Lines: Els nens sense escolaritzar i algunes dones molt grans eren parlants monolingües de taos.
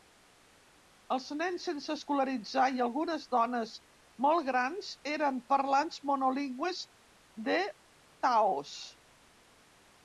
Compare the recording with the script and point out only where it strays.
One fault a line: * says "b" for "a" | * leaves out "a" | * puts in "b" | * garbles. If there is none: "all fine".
all fine